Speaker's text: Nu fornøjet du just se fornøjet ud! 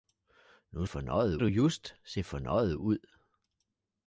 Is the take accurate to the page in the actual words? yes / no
yes